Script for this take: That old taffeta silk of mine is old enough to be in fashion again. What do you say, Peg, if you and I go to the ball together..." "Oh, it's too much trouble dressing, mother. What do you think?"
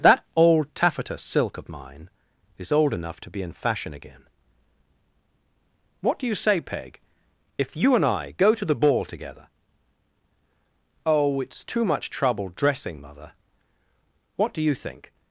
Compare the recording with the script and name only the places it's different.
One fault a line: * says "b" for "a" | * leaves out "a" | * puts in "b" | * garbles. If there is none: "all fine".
all fine